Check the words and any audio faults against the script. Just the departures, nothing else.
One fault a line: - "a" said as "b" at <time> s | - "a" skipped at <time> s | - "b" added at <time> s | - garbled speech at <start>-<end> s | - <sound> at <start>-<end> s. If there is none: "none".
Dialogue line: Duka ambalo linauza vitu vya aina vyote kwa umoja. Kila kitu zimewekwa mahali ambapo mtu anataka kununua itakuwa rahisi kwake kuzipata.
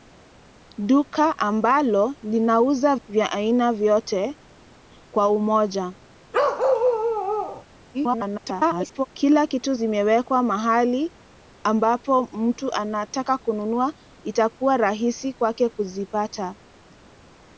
- "vitu" skipped at 3.0 s
- bark at 6.3-7.6 s
- garbled speech at 7.9-9.1 s